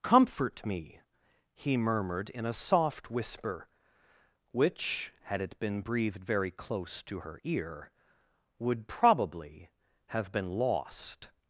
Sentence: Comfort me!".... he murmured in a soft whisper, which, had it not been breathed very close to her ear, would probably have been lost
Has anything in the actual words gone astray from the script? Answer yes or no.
yes